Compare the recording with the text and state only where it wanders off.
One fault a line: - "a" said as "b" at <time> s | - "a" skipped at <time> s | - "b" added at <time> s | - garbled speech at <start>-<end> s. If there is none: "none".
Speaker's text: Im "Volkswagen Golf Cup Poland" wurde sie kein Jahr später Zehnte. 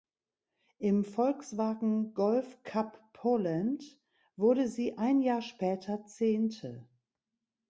- "kein" said as "ein" at 5.0 s